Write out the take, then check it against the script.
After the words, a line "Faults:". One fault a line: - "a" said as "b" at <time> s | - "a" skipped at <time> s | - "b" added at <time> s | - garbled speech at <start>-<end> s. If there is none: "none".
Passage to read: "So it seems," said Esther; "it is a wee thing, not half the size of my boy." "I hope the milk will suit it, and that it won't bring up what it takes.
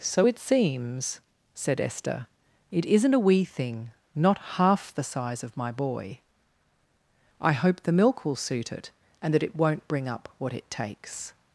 "So it seems," said Esther; "it isn't a wee thing, not half the size of my boy." "I hope the milk will suit it, and that it won't bring up what it takes.
Faults:
- "is" said as "isn't" at 2.8 s